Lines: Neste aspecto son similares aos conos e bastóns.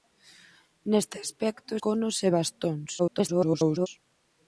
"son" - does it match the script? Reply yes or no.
no